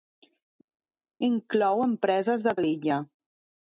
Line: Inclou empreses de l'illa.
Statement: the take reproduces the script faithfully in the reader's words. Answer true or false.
true